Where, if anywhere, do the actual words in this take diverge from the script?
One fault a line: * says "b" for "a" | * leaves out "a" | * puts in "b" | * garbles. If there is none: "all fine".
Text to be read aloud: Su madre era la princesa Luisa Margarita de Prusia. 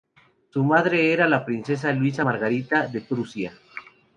all fine